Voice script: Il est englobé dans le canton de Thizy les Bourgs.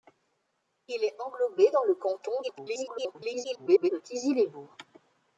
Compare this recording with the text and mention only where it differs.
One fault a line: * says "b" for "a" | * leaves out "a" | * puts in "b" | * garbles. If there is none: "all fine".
* garbles